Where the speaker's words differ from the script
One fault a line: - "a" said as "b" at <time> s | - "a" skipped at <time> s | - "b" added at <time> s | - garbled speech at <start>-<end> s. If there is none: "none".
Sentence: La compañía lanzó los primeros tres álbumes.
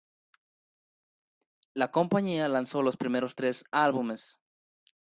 none